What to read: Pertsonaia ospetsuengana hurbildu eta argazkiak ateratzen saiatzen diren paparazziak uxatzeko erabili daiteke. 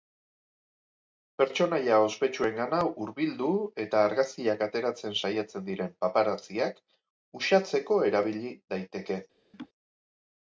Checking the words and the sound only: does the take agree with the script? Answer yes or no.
no